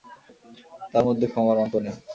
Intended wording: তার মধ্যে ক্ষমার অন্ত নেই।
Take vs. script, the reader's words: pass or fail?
pass